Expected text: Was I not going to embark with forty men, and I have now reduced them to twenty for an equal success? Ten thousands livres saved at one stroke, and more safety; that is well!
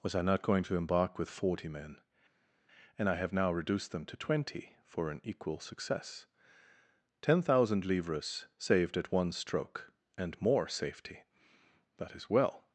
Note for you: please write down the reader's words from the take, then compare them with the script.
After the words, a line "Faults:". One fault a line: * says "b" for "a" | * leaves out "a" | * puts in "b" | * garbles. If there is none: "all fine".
Was I not going to embark with forty men, and I have now reduced them to twenty for an equal success? Ten thousand livres saved at one stroke, and more safety; that is well!
Faults:
* says "thousand" for "thousands"